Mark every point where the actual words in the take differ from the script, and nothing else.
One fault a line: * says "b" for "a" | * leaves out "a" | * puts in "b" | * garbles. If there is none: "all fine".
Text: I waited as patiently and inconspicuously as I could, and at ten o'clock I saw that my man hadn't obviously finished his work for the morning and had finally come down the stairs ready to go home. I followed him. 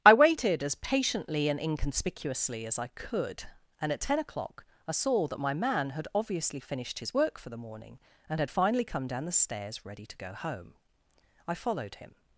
* says "had" for "hadn't"